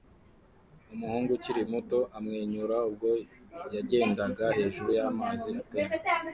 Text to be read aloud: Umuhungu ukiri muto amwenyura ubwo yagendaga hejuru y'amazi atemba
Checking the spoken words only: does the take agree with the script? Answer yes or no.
yes